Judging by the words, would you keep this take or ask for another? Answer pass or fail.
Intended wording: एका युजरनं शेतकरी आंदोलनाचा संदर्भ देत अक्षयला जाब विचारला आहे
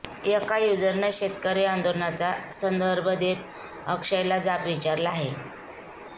pass